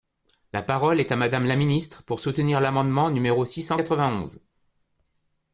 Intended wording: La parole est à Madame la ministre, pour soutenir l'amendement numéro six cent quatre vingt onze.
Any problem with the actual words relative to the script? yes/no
no